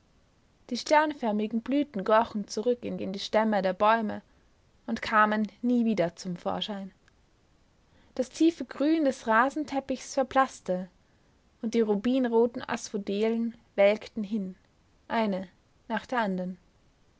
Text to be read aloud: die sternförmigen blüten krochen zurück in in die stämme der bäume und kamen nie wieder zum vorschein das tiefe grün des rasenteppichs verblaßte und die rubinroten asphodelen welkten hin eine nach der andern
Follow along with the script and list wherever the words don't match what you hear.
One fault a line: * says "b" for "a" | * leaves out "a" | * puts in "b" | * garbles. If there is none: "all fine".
all fine